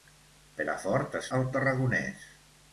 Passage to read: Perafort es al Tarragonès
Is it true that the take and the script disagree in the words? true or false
false